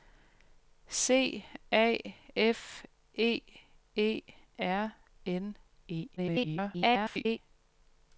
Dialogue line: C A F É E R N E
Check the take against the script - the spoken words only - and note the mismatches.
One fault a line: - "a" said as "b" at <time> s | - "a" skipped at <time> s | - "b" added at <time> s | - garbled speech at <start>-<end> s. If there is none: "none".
- garbled speech at 6.2-7.4 s